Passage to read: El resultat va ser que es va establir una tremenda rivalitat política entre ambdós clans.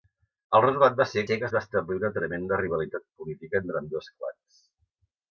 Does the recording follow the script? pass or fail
fail